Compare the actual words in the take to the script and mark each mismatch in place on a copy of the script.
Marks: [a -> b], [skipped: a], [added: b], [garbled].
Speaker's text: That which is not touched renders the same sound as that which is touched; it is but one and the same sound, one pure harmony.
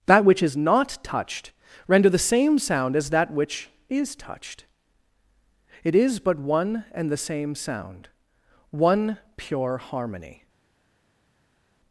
That which is not touched [renders -> render] the same sound as that which is touched; it is but one and the same sound, one pure harmony.